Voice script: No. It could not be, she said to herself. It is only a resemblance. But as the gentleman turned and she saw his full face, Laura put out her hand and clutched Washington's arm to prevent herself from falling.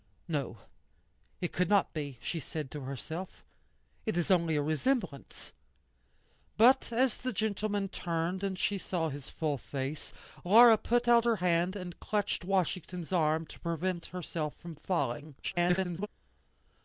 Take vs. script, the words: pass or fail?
fail